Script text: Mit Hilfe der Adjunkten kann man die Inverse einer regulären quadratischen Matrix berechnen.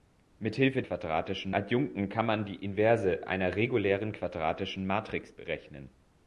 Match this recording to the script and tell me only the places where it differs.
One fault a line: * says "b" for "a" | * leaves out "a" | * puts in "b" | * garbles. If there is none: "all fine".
* says "quadratischen" for "der"